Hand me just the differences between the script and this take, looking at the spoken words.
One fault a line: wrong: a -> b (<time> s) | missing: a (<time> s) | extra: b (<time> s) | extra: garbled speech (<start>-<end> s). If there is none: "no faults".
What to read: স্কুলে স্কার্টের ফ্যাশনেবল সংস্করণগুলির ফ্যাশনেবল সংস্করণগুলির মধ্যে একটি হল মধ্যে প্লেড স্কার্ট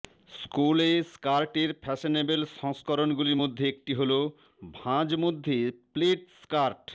missing: ফ্যাশনেবল সংস্করণগুলির (3.4 s)
extra: ভাঁজ (4.7 s)